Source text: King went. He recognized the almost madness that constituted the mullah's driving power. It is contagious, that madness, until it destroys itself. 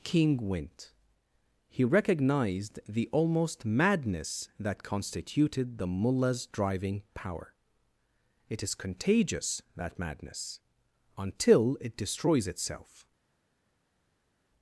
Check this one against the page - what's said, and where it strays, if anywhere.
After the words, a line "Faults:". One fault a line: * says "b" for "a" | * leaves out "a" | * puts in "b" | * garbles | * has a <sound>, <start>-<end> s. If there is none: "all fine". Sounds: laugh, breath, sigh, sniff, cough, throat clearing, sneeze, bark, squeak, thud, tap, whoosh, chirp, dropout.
King went. He recognized the almost madness that constituted the mullah's driving power. It is contagious, that madness, until it destroys itself.
Faults:
all fine